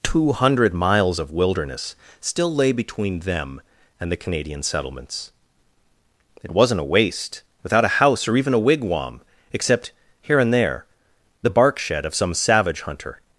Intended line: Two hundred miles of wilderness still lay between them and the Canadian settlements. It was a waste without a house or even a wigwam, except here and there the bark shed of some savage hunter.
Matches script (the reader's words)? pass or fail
fail